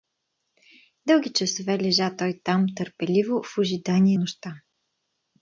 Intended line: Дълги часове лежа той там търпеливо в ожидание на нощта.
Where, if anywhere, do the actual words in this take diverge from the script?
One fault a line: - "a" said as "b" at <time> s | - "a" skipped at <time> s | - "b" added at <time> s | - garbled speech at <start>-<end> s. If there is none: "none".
- "на" skipped at 4.2 s